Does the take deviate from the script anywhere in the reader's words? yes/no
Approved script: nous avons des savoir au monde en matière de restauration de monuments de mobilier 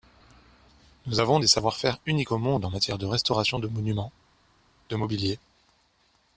yes